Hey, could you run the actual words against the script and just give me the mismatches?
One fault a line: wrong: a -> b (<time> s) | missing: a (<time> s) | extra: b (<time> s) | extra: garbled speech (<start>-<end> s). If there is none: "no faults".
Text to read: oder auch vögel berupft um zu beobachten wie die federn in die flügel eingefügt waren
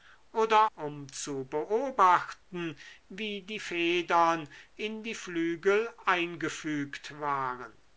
missing: auch vögel berupft (0.7 s)